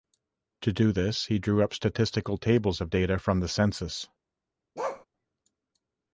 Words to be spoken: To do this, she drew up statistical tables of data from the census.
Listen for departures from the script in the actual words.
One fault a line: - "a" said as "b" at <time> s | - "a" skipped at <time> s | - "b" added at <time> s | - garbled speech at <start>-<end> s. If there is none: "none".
- "she" said as "he" at 1.2 s